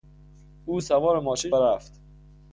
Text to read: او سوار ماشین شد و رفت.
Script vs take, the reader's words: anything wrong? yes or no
yes